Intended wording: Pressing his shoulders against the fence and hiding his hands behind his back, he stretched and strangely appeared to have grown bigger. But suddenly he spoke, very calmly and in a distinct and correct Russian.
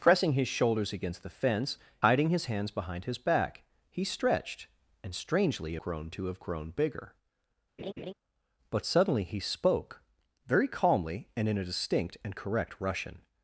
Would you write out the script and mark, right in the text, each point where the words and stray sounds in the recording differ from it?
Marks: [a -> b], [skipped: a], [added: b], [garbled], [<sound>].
Pressing his shoulders against the fence [skipped: and] hiding his hands behind his back, he stretched and strangely [appeared -> grown] to have grown bigger. [laugh] But suddenly he spoke, very calmly and in a distinct and correct Russian.